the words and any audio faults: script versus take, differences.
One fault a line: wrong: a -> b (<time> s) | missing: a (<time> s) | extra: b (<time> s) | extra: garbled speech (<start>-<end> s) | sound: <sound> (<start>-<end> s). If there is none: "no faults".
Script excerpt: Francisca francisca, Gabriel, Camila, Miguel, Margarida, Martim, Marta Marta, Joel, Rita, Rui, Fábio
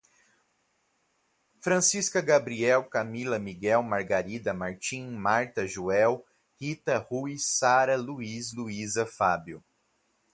missing: francisca (2.2 s)
missing: Marta (5.7 s)
extra: Sara Luís Luísa (7.4 s)